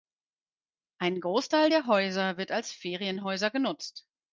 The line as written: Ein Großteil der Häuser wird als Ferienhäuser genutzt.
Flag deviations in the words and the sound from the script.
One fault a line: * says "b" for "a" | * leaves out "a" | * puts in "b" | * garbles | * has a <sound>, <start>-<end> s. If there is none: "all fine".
all fine